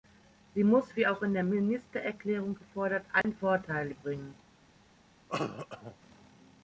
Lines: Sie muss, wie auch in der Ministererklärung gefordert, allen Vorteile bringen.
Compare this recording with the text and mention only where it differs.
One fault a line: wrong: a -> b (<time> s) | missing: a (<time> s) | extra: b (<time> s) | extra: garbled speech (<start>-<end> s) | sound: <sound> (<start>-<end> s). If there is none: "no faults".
sound: dropout (3.2-3.2 s)
sound: cough (5.3-6.0 s)